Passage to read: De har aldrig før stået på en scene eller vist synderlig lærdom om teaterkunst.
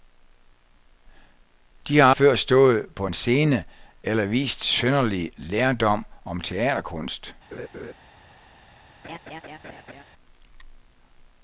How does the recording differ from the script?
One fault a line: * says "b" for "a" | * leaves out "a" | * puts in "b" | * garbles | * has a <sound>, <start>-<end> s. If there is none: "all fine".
* leaves out "aldrig"
* has a laugh, 7.5-7.9 s
* has a laugh, 9.0-10.0 s